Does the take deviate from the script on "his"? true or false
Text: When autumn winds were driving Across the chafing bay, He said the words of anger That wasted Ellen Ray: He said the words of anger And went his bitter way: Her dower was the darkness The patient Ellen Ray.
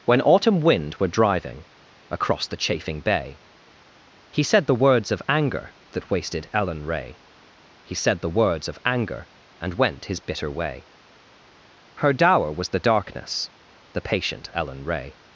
false